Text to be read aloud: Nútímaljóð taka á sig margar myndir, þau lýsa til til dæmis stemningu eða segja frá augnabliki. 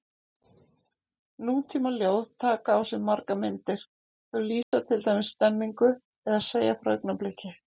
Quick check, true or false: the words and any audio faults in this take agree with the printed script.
false